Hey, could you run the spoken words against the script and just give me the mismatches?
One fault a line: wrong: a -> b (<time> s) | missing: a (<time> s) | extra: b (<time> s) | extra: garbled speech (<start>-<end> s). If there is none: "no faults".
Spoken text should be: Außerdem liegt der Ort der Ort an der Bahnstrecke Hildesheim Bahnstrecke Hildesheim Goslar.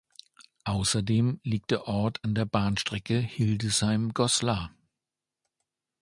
missing: der Ort (2.2 s)
missing: Bahnstrecke Hildesheim (4.2 s)